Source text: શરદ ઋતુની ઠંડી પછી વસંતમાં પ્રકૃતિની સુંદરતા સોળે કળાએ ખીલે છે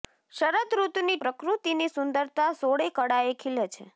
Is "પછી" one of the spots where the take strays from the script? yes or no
yes